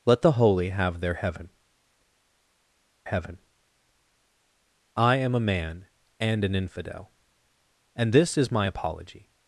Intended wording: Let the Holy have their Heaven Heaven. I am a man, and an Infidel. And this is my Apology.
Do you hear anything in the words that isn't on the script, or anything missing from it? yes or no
no